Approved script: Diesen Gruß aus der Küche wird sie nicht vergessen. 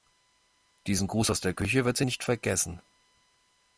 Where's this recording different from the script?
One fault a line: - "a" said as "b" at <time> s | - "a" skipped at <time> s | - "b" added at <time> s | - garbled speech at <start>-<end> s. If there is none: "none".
none